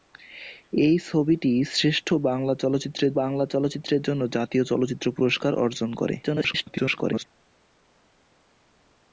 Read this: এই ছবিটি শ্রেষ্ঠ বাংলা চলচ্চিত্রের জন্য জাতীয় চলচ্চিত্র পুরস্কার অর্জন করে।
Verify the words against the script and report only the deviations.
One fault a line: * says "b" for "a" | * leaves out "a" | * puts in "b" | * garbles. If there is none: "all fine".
* puts in "বাংলা চলচ্চিত্রের"
* garbles